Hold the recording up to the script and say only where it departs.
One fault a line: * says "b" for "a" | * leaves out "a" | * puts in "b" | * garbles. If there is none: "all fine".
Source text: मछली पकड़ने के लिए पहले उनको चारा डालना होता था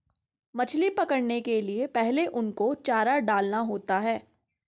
* says "है" for "था"